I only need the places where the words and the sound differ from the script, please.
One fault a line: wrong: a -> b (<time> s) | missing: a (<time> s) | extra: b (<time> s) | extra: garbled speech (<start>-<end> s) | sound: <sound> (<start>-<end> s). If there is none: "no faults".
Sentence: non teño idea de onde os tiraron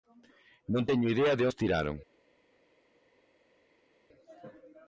missing: onde (1.4 s)